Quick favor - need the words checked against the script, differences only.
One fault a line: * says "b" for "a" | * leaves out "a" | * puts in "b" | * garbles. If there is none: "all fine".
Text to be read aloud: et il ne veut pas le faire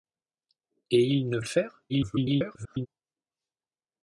* leaves out "veut pas"
* garbles